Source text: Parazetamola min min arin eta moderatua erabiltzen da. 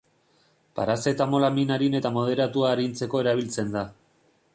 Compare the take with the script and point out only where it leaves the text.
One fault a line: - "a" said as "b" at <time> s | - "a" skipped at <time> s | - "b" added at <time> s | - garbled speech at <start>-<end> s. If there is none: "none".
- "min" skipped at 1.7 s
- "arintzeko" added at 2.8 s